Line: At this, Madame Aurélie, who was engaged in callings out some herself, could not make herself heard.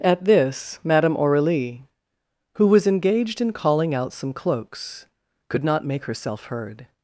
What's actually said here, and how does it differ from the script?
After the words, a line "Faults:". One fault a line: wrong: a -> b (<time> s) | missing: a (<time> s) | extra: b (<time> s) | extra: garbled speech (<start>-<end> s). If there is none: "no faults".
At this, Madame Aurélie, who was engaged in calling out some cloaks, could not make herself heard.
Faults:
wrong: callings -> calling (3.5 s)
wrong: herself -> cloaks (4.3 s)